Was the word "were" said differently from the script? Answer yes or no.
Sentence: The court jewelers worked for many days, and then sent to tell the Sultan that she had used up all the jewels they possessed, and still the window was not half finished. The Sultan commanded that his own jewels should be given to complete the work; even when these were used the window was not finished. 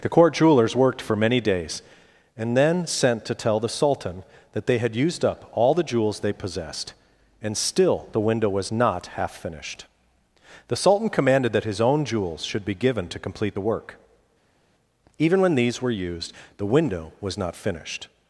no